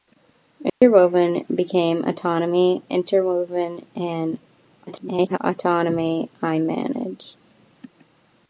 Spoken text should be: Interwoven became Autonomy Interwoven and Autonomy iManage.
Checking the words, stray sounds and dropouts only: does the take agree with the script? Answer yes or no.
no